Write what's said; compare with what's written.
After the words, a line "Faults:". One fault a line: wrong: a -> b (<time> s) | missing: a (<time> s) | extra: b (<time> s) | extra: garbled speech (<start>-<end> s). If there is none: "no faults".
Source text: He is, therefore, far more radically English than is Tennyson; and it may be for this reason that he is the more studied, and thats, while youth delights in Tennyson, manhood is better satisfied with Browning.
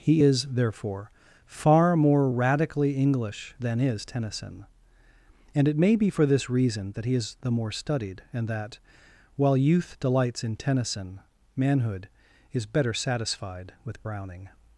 He is, therefore, far more radically English than is Tennyson; and it may be for this reason that he is the more studied, and that, while youth delights in Tennyson, manhood is better satisfied with Browning.
Faults:
wrong: thats -> that (8.5 s)